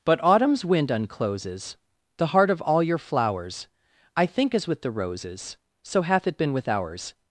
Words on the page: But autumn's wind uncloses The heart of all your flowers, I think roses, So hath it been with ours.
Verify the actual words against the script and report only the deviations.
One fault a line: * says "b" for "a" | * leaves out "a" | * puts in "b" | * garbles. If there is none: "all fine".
* puts in "as with the"